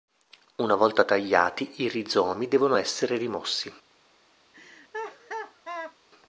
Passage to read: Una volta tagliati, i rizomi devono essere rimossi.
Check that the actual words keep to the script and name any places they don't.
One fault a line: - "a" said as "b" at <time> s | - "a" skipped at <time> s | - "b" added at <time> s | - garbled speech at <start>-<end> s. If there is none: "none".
none